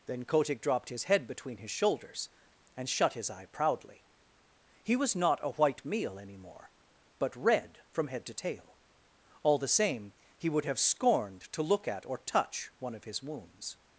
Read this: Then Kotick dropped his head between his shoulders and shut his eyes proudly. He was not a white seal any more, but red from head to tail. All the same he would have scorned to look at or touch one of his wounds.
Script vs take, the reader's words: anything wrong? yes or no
yes